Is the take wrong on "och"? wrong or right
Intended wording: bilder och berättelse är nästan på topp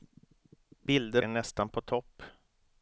wrong